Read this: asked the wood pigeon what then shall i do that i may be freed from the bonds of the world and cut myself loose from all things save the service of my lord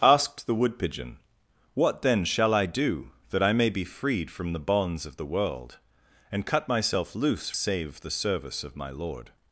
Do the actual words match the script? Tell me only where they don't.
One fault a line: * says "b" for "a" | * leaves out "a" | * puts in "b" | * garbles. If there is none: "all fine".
* leaves out "from all things"